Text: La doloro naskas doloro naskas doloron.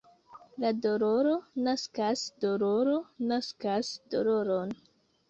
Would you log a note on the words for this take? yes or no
no